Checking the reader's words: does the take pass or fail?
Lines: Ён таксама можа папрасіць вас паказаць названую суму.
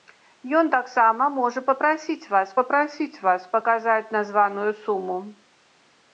fail